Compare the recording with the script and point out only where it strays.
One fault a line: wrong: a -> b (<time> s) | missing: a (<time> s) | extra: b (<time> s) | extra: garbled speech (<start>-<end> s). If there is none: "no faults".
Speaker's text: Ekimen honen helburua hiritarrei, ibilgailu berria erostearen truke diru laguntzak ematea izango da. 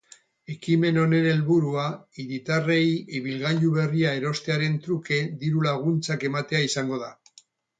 no faults